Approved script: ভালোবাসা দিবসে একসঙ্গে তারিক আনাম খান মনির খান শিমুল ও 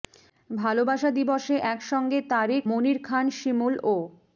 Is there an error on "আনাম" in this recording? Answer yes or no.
yes